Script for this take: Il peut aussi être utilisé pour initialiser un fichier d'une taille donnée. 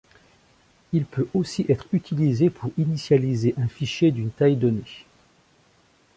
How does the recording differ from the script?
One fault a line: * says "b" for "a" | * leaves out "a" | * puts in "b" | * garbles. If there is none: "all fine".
all fine